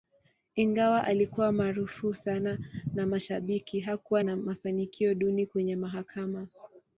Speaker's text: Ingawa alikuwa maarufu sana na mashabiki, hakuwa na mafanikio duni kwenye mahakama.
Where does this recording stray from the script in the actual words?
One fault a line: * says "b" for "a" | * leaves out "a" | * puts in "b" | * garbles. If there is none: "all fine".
all fine